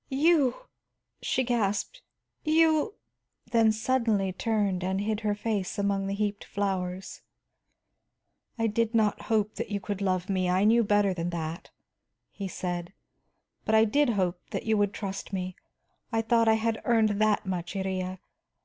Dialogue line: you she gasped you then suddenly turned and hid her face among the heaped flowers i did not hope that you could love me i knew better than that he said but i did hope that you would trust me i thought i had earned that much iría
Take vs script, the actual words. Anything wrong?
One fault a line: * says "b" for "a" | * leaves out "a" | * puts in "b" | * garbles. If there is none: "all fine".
all fine